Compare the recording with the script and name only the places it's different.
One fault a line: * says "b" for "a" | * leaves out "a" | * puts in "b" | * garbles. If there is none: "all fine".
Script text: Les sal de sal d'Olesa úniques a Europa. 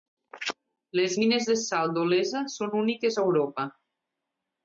* says "mines" for "sal"
* puts in "són"